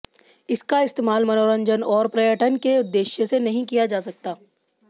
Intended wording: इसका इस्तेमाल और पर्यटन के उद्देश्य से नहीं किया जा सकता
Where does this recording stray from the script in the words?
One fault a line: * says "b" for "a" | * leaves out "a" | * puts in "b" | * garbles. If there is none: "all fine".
* puts in "मनोरंजन"